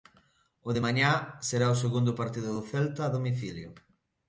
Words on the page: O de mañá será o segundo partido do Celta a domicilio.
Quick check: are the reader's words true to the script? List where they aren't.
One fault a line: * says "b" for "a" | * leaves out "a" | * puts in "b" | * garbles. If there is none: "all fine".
all fine